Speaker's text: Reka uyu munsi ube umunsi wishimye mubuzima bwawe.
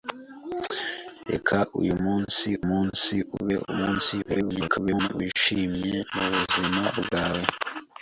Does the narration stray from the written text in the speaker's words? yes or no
yes